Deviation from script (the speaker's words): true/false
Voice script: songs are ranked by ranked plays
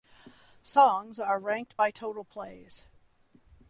true